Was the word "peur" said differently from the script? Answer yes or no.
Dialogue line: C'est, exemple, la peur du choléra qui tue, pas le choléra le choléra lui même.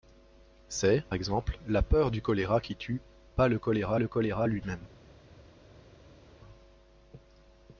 no